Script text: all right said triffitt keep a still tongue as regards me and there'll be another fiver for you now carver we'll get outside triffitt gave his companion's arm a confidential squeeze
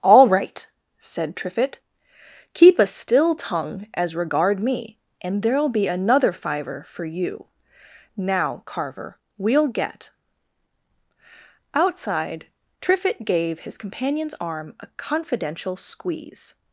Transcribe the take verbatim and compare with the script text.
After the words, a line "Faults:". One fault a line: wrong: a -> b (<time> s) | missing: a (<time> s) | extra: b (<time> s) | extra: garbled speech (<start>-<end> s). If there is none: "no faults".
all right said triffitt keep a still tongue as regard me and there'll be another fiver for you now carver we'll get outside triffitt gave his companion's arm a confidential squeeze
Faults:
wrong: regards -> regard (4.2 s)